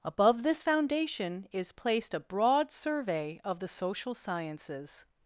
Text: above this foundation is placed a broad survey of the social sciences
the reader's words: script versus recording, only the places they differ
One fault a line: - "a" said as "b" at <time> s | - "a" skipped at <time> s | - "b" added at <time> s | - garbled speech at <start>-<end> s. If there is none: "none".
none